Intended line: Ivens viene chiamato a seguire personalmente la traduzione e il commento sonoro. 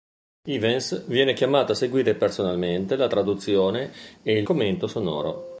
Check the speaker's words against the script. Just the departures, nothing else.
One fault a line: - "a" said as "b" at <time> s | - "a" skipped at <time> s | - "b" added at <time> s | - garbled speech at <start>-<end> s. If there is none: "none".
none